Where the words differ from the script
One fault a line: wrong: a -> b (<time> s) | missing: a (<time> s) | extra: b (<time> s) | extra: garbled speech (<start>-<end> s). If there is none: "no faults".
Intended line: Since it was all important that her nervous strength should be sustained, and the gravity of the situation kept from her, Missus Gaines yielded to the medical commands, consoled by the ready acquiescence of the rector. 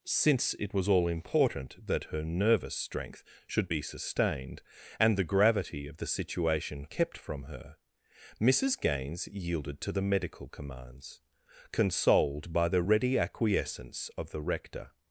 no faults